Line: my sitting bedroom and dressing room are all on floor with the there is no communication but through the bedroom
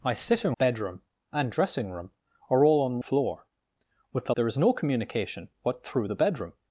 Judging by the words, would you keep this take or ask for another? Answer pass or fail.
pass